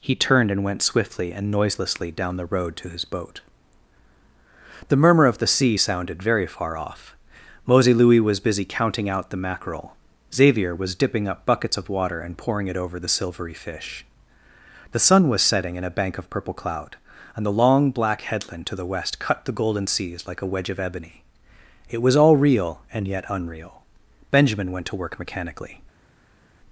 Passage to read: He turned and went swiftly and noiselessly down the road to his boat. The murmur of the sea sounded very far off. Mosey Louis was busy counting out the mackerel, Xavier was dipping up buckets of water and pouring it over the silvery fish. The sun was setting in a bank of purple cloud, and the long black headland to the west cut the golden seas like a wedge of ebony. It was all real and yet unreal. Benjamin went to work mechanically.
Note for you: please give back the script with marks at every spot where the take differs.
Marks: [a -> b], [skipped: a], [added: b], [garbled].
He turned and went swiftly and noiselessly down the road to his boat. The murmur of the sea sounded very far off. Mosey Louis was busy counting out the mackerel, Xavier was dipping up buckets of water and pouring it over the silvery fish. The sun was setting in a bank of purple cloud, and the long black headland to the west cut the golden seas like a wedge of ebony. It was all real and yet unreal. Benjamin went to work mechanically.